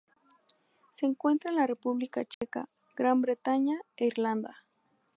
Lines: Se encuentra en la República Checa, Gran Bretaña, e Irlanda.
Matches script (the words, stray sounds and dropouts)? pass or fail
fail